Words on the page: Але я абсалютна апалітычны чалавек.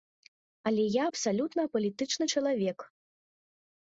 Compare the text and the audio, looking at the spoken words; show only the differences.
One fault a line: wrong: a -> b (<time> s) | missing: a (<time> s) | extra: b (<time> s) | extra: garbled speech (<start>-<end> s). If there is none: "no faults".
no faults